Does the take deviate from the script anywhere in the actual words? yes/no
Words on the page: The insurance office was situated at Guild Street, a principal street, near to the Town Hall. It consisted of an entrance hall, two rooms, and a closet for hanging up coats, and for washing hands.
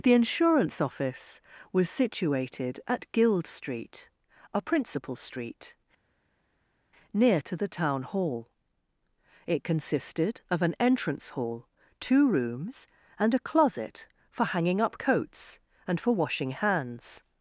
no